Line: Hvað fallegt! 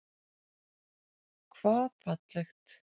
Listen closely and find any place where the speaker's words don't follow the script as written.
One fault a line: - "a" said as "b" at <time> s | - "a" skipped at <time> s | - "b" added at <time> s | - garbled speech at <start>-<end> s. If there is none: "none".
none